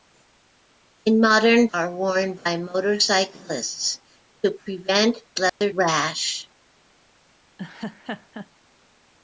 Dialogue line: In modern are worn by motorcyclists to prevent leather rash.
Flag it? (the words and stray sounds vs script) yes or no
yes